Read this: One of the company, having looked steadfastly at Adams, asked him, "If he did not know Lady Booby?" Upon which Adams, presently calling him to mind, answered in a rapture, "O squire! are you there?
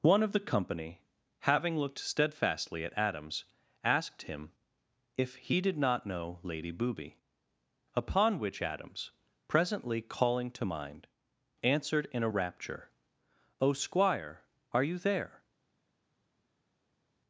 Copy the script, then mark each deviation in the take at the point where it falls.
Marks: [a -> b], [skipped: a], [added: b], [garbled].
One of the company, having looked steadfastly at Adams, asked him, "If he did not know Lady Booby?" Upon which Adams, presently calling [skipped: him] to mind, answered in a rapture, "O squire! are you there?